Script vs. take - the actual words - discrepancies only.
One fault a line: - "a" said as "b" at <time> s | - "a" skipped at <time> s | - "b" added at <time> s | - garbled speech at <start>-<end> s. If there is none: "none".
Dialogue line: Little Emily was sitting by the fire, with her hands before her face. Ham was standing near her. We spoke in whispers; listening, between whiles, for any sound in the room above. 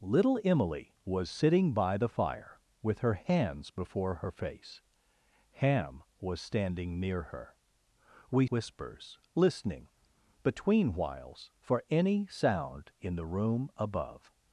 - "spoke in" skipped at 8.5 s